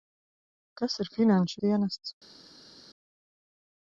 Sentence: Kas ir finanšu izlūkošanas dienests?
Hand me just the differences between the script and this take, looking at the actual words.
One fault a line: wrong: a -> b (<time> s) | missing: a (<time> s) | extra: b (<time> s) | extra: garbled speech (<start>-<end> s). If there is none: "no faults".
missing: izlūkošanas (1.6 s)